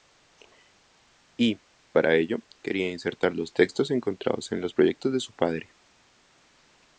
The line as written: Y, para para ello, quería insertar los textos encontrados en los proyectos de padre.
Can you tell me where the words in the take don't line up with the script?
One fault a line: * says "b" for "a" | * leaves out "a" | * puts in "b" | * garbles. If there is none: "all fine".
* leaves out "para"
* puts in "su"